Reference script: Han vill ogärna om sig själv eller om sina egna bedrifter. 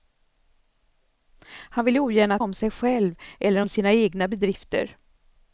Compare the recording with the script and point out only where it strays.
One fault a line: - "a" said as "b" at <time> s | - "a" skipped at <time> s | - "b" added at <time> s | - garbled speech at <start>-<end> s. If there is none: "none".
none